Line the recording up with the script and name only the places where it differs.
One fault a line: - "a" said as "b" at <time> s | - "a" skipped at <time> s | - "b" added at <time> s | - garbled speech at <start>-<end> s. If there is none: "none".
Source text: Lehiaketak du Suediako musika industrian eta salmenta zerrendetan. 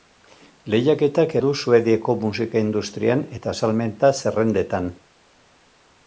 none